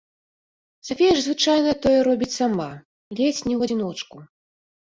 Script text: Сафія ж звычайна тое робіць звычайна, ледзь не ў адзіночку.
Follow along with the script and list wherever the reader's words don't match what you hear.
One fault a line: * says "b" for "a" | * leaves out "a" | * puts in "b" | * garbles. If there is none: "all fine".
* says "сама" for "звычайна"